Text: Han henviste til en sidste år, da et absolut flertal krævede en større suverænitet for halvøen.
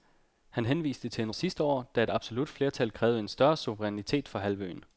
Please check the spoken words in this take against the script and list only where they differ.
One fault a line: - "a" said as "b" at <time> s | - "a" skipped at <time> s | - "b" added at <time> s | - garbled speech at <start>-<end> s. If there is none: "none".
none